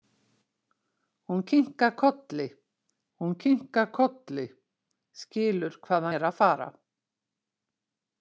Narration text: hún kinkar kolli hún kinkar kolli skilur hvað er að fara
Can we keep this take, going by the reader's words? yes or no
yes